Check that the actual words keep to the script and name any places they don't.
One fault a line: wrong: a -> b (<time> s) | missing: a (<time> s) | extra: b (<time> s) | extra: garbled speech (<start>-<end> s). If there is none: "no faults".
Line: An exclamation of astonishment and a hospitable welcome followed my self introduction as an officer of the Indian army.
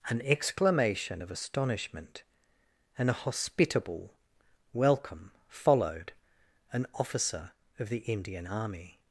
missing: my self introduction as (6.1 s)